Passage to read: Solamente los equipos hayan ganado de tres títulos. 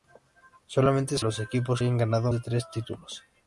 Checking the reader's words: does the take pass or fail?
pass